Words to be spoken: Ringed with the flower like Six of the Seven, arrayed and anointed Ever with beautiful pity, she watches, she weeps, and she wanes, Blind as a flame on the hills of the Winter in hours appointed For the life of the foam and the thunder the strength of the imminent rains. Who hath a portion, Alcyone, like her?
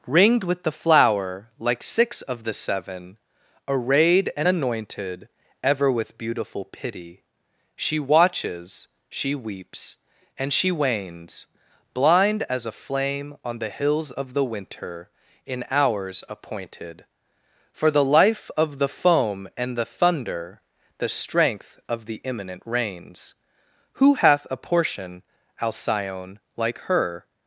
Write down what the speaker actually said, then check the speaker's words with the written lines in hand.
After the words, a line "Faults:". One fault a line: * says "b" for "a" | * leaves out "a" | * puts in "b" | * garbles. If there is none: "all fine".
Ringed with the flower like Six of the Seven, arrayed and anointed Ever with beautiful pity, she watches, she weeps, and she wanes, Blind as a flame on the hills of the Winter in hours appointed For the life of the foam and the thunder the strength of the imminent rains. Who hath a portion, Alcyone, like her?
Faults:
all fine